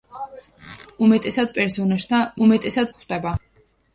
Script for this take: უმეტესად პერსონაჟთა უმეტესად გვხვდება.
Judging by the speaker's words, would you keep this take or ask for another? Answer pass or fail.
pass